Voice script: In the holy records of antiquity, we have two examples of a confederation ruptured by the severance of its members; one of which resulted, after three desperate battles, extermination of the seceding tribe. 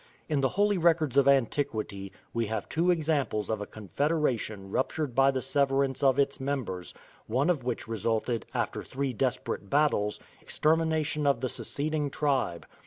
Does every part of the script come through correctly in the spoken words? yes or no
yes